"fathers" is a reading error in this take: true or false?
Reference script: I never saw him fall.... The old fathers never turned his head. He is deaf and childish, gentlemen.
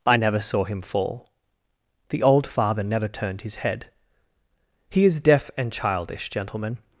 true